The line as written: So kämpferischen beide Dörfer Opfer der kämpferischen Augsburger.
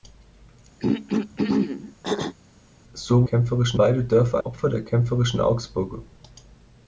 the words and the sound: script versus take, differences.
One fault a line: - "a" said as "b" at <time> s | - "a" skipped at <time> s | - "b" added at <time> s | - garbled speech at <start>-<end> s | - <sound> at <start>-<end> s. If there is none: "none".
- throat clearing at 0.8-2.3 s